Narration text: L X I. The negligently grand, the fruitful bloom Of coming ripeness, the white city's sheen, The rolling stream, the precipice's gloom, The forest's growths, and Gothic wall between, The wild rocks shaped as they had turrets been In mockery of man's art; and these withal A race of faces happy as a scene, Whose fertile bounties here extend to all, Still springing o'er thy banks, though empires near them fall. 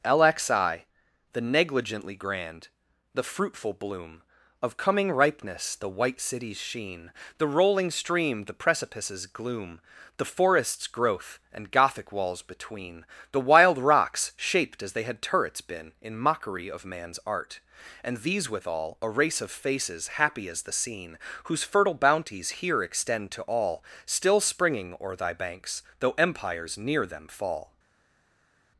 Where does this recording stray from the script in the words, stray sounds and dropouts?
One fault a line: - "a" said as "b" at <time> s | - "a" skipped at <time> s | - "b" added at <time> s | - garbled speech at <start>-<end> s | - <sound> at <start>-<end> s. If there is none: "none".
- "growths" said as "growth" at 10.9 s
- "wall" said as "walls" at 12.1 s
- "a" said as "the" at 20.6 s